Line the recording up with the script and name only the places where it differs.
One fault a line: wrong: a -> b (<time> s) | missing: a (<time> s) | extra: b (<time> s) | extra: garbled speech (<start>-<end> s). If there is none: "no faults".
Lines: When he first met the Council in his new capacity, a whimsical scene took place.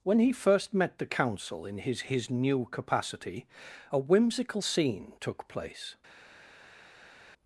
extra: his (2.0 s)